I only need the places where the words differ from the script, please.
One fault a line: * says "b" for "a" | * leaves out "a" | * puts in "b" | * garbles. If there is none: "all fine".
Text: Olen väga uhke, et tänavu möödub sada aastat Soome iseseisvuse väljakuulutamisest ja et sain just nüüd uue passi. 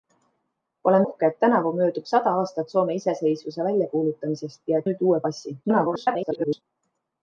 * leaves out "väga"
* leaves out "et sain just"
* garbles